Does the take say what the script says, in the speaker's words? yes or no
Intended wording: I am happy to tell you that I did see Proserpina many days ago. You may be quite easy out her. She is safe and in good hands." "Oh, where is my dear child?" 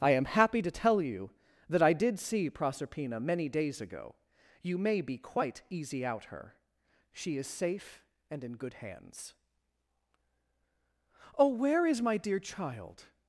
yes